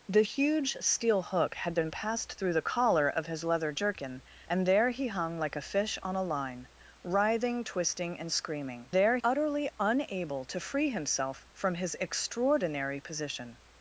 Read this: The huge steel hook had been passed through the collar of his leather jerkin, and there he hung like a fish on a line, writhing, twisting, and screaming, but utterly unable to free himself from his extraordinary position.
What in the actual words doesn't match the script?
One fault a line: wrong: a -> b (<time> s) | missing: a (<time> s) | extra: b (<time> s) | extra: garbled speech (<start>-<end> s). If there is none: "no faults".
wrong: but -> there (8.9 s)